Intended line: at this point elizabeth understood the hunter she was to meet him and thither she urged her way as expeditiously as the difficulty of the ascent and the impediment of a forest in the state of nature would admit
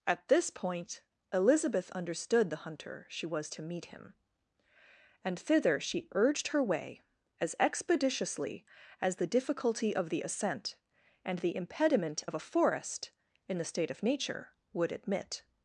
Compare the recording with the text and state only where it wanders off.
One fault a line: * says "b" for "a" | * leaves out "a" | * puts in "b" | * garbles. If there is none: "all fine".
all fine